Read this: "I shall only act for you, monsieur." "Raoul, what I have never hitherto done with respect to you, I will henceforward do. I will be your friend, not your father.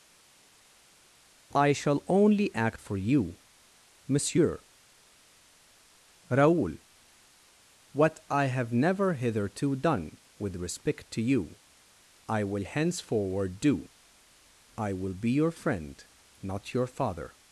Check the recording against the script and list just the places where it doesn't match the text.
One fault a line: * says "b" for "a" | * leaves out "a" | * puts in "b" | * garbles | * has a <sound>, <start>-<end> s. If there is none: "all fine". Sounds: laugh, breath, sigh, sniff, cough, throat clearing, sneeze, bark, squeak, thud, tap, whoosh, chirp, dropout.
all fine